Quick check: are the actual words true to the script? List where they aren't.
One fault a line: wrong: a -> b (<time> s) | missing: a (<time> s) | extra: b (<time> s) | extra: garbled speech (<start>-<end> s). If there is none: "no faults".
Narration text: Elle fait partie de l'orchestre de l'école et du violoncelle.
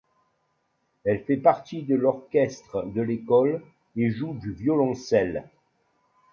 extra: joue (4.1 s)